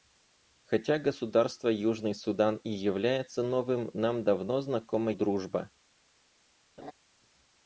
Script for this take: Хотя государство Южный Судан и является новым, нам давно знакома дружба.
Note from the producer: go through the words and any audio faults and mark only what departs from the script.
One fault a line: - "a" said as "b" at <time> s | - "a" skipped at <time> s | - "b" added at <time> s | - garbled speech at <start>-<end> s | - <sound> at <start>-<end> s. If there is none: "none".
- laugh at 6.8-6.9 s